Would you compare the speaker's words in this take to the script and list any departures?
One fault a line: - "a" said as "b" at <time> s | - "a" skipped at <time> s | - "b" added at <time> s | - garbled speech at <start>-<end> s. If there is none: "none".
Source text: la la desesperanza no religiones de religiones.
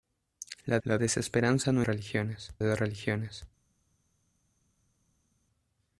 none